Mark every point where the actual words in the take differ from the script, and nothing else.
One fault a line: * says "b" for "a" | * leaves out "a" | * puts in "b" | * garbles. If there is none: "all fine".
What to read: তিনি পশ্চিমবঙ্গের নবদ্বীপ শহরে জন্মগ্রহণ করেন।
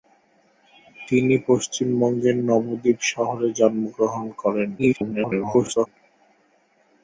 * garbles